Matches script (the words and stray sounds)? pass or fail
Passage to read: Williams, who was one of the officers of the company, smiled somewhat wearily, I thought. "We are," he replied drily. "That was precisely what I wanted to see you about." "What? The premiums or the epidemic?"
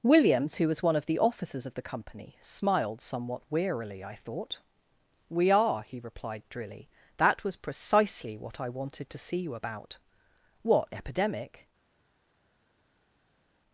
fail